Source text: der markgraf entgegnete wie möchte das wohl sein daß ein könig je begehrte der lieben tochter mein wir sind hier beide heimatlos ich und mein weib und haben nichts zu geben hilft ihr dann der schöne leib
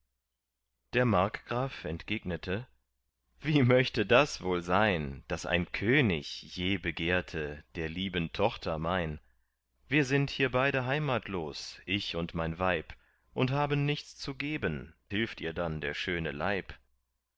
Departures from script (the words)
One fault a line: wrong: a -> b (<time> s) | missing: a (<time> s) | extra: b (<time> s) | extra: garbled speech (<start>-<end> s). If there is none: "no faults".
no faults